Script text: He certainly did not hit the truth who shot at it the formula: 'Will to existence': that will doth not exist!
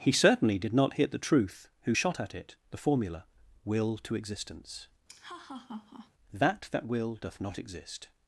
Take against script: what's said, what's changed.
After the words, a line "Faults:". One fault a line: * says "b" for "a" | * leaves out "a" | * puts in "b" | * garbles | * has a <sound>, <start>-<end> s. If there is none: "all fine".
He certainly did not hit the truth who shot at it the formula: 'Will to existence': that that will doth not exist!
Faults:
* has a laugh, 5.1-6.1 s
* puts in "that"